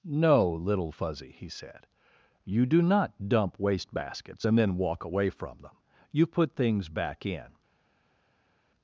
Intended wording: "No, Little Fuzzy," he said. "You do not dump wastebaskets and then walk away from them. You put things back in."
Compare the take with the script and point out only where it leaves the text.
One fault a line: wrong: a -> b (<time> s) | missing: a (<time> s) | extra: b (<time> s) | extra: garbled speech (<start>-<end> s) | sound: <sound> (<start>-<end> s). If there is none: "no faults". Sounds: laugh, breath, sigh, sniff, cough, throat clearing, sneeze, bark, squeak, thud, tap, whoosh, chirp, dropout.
no faults